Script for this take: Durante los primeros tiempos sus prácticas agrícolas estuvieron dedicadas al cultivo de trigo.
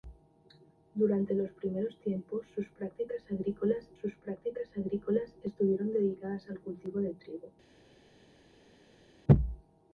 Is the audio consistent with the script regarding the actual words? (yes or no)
no